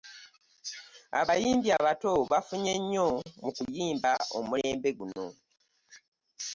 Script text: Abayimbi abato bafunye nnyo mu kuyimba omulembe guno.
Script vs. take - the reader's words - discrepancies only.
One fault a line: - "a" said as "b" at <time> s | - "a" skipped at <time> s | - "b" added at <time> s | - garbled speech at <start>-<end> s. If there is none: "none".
none